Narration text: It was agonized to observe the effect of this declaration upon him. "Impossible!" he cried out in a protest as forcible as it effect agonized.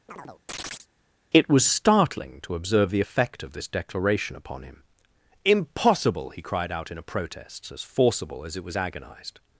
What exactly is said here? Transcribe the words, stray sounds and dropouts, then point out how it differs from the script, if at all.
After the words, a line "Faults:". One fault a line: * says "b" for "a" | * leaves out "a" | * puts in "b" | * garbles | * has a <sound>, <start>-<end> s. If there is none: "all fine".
It was startling to observe the effect of this declaration upon him. "Impossible!" he cried out in a protest as forcible as it was agonized.
Faults:
* has a chirp, 0.1-0.9 s
* says "startling" for "agonized"
* says "was" for "effect"